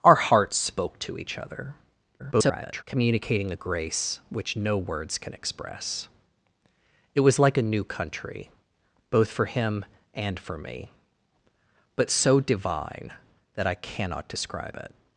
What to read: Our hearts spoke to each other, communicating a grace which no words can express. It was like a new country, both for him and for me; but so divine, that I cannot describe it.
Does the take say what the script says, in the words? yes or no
no